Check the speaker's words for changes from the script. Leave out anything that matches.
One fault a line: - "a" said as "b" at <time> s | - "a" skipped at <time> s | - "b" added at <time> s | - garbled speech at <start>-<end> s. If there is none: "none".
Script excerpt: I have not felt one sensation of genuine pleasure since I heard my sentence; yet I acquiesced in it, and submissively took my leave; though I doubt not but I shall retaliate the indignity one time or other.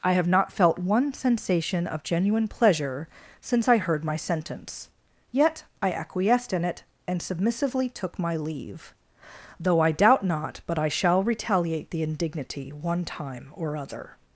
none